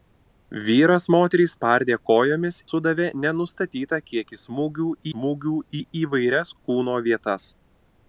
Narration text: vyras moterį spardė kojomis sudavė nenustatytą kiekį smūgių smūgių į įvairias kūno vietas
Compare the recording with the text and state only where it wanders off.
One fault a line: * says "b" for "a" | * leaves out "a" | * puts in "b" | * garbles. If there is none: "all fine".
all fine